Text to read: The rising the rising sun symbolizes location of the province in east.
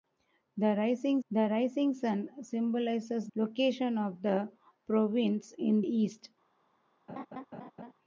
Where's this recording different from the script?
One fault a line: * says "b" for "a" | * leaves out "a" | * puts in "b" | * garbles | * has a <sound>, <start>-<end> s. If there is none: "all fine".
* has a laugh, 7.1-7.9 s